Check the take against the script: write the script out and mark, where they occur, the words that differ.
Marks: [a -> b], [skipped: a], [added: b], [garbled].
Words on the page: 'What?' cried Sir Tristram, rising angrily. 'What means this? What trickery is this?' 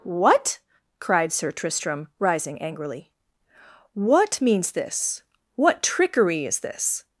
'What?' cried Sir Tristram, rising angrily. 'What means this? What trickery is this?'